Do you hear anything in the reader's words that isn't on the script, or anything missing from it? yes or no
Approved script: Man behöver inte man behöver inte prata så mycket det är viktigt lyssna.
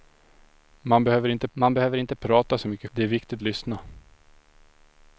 no